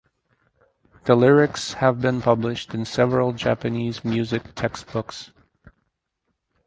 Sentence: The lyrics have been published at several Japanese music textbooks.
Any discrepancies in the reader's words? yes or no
yes